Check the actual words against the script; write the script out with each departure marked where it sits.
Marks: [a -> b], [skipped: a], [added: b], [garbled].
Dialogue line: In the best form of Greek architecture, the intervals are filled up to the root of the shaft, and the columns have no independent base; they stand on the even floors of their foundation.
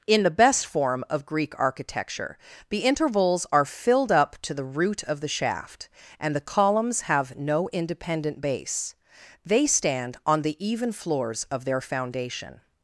In the best form of Greek architecture, the intervals are filled up to the root of the shaft, and the columns have no independent base; they stand on the even floors of their foundation.